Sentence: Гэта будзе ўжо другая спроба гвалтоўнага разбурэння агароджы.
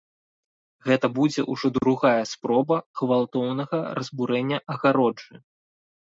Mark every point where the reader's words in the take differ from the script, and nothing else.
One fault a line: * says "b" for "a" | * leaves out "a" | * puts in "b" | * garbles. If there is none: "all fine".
all fine